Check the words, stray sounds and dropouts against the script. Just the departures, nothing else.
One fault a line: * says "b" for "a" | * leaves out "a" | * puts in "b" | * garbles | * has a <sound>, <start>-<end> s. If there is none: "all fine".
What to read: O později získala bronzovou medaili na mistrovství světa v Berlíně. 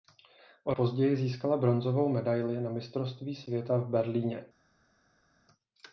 all fine